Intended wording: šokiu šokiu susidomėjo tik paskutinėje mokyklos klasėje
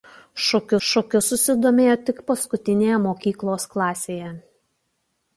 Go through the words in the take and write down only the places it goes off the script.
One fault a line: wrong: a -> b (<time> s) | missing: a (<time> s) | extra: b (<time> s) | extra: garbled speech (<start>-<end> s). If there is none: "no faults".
no faults